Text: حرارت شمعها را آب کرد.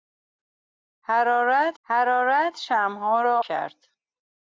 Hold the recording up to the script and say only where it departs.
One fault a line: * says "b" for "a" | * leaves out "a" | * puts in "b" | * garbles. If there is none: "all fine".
* puts in "حرارت"
* leaves out "آب"